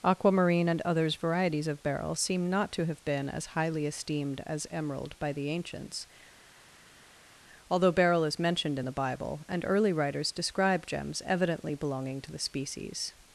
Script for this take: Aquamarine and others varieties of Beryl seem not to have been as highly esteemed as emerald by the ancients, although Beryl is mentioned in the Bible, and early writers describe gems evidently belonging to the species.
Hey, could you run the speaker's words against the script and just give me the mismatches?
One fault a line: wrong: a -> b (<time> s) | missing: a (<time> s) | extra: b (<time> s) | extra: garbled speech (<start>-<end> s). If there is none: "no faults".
no faults